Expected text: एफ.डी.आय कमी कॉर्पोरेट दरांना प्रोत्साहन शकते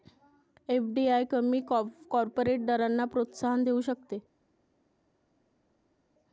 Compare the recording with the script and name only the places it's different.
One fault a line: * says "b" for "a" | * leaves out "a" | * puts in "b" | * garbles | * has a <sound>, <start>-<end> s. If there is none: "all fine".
* puts in "देऊ"